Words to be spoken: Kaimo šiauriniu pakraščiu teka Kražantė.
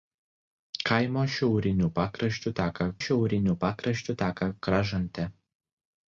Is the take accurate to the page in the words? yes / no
no